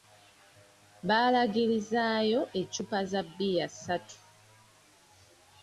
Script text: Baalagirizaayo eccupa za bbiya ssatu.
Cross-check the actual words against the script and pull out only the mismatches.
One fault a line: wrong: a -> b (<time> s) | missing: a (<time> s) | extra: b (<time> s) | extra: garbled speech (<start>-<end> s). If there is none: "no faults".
no faults